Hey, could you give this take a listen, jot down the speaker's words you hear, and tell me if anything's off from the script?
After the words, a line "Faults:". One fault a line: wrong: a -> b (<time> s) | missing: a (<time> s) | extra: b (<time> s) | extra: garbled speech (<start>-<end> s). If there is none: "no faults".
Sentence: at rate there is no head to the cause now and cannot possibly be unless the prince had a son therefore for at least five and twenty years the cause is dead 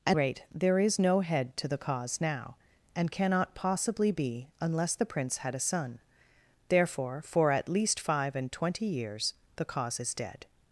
at rate there is no head to the cause now and cannot possibly be unless the prince had a son therefore for at least five and twenty years the cause is dead
Faults:
no faults